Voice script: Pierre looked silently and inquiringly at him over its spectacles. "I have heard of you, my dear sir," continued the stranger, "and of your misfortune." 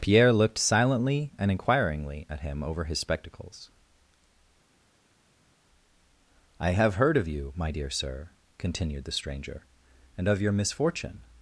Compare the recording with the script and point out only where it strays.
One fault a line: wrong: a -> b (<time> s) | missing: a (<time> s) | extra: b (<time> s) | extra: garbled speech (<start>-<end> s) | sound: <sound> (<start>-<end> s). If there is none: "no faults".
wrong: its -> his (2.9 s)